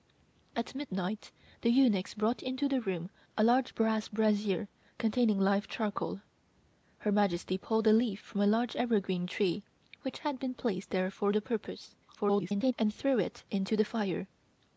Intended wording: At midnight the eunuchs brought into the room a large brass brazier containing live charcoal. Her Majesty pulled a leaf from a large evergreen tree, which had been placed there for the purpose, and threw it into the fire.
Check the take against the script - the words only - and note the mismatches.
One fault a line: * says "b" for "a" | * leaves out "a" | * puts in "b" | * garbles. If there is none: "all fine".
* garbles